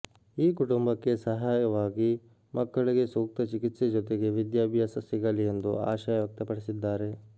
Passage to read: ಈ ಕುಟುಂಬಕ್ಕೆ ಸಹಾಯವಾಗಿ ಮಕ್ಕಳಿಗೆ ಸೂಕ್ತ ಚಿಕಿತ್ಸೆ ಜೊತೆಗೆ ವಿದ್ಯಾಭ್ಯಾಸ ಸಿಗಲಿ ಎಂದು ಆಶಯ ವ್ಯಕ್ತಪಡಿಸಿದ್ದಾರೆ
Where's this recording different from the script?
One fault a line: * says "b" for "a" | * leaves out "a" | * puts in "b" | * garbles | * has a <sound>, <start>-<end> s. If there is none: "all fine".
all fine